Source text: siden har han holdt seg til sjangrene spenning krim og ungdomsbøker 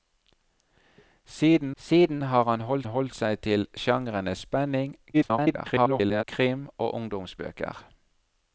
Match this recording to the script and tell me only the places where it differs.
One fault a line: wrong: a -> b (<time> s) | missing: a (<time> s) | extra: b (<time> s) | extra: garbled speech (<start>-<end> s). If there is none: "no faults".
extra: siden (1.8 s)
extra: holdt (2.8 s)
extra: garbled speech (5.1-6.2 s)